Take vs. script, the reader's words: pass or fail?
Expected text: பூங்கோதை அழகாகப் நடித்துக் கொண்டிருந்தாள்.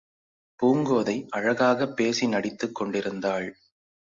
fail